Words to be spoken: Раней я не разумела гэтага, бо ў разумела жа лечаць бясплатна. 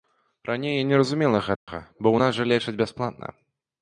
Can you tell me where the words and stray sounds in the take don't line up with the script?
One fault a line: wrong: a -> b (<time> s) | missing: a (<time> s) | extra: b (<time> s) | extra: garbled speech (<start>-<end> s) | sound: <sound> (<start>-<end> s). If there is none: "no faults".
sound: dropout (1.6-1.7 s)
wrong: разумела -> нас (2.2 s)